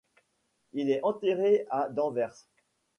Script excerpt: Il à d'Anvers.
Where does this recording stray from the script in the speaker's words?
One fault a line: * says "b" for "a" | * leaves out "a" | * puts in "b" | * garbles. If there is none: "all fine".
* puts in "est enterré"